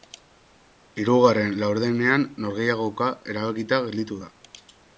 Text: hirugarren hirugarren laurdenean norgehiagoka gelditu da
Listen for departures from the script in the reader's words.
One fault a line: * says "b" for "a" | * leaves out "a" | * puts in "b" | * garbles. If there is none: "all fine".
* leaves out "hirugarren"
* puts in "erabakita"